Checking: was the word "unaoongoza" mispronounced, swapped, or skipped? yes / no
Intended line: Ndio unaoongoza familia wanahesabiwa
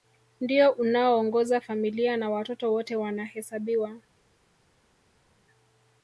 no